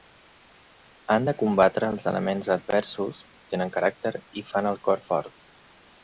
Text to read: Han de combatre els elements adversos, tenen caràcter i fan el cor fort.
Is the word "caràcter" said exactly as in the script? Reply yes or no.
yes